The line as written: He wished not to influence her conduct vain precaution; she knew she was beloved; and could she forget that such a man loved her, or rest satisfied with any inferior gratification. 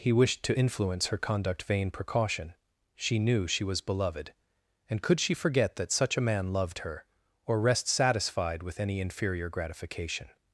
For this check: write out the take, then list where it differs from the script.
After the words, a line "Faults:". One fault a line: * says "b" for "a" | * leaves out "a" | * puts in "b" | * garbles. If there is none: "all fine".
He wished to influence her conduct vain precaution; she knew she was beloved; and could she forget that such a man loved her, or rest satisfied with any inferior gratification.
Faults:
* leaves out "not"